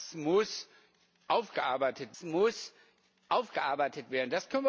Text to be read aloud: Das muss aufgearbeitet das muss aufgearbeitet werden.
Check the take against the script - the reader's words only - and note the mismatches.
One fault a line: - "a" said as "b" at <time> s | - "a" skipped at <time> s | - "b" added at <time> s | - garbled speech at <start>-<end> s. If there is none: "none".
none